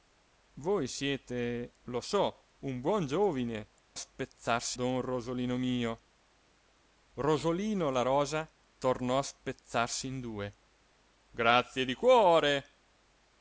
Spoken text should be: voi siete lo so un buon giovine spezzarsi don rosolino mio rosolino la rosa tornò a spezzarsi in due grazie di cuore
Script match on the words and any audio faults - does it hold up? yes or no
yes